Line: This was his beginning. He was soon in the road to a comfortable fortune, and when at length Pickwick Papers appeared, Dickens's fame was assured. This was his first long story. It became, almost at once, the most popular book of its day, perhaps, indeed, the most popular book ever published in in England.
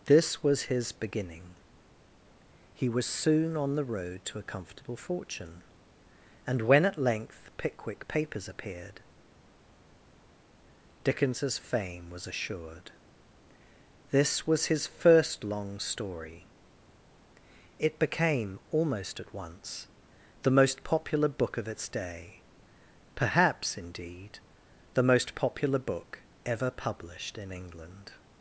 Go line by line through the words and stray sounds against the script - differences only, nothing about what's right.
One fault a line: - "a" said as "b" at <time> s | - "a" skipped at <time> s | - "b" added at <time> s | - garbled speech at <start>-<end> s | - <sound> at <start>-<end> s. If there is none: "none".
- "in" said as "on" at 3.5 s
- "in" skipped at 27.5 s